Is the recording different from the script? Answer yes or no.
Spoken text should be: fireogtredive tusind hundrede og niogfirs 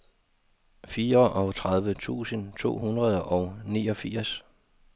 yes